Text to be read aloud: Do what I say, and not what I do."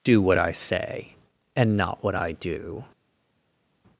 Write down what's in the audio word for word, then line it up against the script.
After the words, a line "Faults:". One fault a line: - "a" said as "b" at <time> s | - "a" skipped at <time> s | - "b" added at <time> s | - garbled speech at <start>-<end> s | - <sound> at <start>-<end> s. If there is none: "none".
Do what I say, and not what I do."
Faults:
none